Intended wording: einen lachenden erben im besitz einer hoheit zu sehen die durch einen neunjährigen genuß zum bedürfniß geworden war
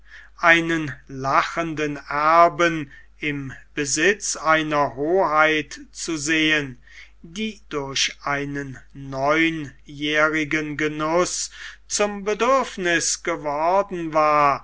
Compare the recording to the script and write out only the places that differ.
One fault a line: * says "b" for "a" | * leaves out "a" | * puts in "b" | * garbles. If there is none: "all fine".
all fine